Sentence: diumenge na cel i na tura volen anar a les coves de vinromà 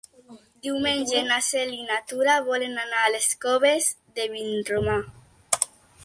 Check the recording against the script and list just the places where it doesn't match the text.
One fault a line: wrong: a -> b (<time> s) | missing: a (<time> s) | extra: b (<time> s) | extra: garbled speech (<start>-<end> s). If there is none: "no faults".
no faults